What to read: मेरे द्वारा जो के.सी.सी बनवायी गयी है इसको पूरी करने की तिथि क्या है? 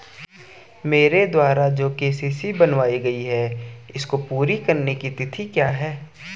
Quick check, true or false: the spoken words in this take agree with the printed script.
true